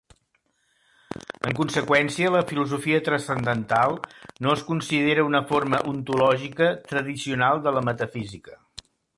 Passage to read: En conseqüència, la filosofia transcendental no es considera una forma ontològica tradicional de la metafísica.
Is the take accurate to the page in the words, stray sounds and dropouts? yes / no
yes